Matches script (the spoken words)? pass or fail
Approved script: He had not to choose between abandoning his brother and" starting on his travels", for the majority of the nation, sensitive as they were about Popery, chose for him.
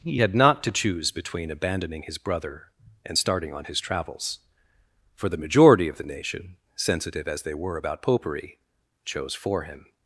pass